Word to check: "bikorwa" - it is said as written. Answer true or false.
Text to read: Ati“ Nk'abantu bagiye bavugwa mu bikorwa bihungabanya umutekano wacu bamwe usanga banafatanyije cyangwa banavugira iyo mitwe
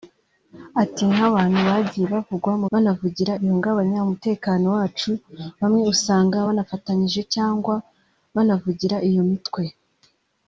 false